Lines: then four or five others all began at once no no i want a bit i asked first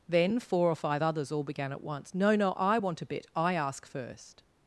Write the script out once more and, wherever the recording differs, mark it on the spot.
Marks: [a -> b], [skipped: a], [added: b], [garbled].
then four or five others all began at once no no i want a bit i [asked -> ask] first